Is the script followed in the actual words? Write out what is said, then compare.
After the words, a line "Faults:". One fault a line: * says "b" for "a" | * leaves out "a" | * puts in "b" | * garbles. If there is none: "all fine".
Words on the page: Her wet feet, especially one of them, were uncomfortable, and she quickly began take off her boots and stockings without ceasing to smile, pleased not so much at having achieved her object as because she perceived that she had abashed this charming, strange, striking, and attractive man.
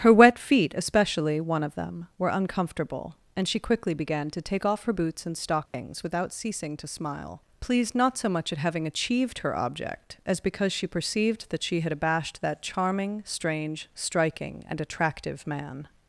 Her wet feet, especially one of them, were uncomfortable, and she quickly began to take off her boots and stockings without ceasing to smile, pleased not so much at having achieved her object as because she perceived that she had abashed that charming, strange, striking, and attractive man.
Faults:
* puts in "to"
* says "that" for "this"